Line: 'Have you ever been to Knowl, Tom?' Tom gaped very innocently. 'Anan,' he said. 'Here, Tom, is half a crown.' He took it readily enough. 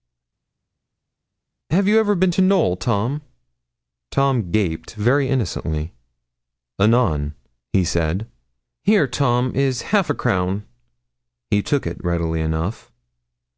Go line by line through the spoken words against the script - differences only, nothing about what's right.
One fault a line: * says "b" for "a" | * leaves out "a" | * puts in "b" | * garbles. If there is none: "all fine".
all fine